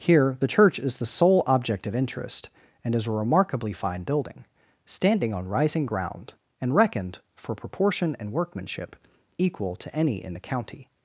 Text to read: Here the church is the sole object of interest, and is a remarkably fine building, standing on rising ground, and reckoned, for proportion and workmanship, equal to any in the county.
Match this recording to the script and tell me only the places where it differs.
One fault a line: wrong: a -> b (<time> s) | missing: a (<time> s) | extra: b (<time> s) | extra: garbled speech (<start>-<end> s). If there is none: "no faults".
no faults